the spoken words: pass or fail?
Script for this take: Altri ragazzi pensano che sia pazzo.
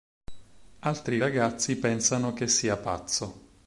pass